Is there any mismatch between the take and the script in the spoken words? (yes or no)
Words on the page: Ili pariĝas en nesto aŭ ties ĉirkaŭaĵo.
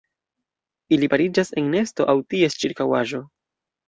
no